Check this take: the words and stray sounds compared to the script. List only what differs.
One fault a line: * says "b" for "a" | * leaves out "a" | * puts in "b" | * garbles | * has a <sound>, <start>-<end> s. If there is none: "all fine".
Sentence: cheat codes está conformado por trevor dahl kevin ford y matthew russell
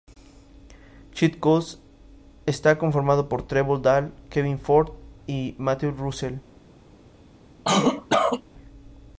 * has a cough, 7.6-8.4 s